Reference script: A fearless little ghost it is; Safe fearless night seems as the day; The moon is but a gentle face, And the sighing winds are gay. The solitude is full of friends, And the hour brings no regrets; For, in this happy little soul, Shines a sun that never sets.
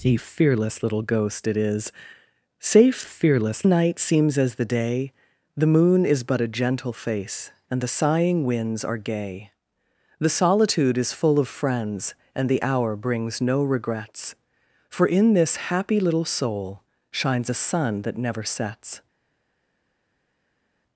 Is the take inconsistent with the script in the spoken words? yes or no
no